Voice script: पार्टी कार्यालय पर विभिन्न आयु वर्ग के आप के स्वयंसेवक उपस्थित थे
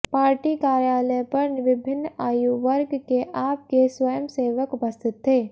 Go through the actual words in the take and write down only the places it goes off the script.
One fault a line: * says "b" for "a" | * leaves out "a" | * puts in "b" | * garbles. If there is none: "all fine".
all fine